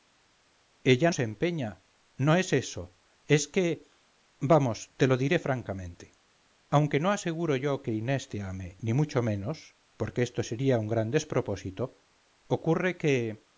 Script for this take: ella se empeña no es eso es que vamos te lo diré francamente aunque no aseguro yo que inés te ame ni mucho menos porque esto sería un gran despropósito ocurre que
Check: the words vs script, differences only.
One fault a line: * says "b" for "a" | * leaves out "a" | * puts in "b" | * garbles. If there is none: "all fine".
all fine